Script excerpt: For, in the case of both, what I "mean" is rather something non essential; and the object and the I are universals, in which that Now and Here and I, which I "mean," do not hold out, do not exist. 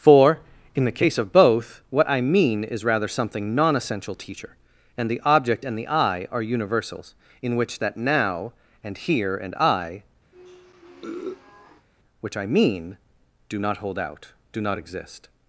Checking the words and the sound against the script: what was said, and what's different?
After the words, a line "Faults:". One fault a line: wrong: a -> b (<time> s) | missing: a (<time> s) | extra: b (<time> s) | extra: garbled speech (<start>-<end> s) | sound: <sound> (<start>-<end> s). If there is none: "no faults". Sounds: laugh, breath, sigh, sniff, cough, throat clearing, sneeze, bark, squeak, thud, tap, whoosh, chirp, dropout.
For, in the case of both, what I "mean" is rather something non essential; teacher and the object and the I are universals, in which that Now and Here and I, which I "mean," do not hold out, do not exist.
Faults:
extra: teacher (4.1 s)
sound: sniff (10.3-11.9 s)